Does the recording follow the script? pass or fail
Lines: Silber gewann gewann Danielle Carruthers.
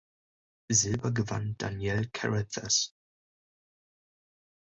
fail